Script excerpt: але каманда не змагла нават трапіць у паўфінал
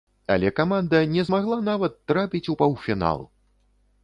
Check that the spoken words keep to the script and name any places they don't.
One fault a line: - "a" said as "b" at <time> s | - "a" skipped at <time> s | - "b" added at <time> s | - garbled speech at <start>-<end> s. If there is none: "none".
none